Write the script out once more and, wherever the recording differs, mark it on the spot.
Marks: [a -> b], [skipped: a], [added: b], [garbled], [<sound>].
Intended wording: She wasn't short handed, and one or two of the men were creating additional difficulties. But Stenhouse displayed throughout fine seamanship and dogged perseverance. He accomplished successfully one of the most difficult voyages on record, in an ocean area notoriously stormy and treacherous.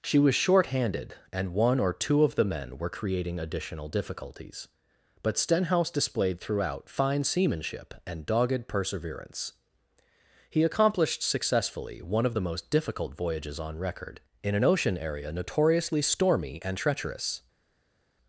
She [wasn't -> was] short handed, and one or two of the men were creating additional difficulties. But Stenhouse displayed throughout fine seamanship and dogged perseverance. He accomplished successfully one of the most difficult voyages on record, in an ocean area notoriously stormy and treacherous.